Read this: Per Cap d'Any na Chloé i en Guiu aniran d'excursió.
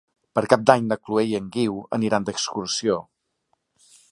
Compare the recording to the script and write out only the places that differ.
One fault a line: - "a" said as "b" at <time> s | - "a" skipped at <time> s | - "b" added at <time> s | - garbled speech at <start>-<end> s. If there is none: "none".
none